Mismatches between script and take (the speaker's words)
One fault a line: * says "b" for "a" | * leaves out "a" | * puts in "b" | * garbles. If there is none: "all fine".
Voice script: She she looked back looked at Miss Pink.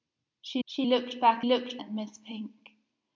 all fine